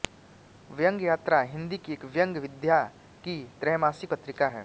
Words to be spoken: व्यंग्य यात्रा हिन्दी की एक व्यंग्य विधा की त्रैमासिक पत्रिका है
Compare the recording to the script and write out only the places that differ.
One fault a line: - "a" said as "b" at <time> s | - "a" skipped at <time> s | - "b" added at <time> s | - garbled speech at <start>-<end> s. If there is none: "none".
none